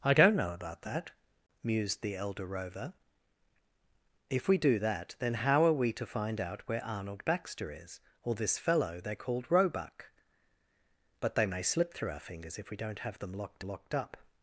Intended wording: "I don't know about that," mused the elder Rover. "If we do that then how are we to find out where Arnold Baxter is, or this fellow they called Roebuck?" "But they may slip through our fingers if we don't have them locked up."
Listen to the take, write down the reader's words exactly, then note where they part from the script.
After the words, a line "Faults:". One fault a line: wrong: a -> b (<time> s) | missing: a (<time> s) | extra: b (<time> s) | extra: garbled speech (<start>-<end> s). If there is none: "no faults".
"I don't know about that," mused the elder Rover. "If we do that then how are we to find out where Arnold Baxter is, or this fellow they called Roebuck?" "But they may slip through our fingers if we don't have them locked locked up."
Faults:
extra: locked (13.6 s)